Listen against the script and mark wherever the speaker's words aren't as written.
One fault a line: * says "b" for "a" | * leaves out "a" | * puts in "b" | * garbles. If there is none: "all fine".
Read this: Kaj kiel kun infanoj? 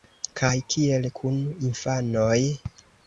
all fine